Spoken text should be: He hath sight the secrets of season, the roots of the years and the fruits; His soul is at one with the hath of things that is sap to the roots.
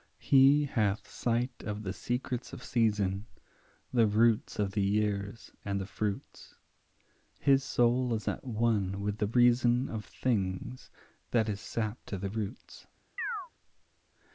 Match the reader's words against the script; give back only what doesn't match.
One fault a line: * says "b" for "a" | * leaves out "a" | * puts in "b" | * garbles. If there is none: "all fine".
* puts in "of"
* says "reason" for "hath"